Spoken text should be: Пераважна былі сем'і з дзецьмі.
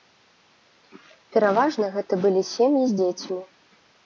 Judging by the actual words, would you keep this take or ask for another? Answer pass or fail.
fail